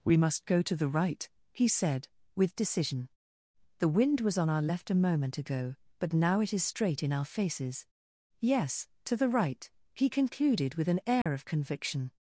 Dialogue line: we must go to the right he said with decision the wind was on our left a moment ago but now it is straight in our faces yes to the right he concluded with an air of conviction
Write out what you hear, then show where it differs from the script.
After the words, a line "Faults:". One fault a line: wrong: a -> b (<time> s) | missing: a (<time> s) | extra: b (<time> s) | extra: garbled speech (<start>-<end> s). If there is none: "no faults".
we must go to the right he said with decision the wind was on our left a moment ago but now it is straight in our faces yes to the right he concluded with an air of conviction
Faults:
no faults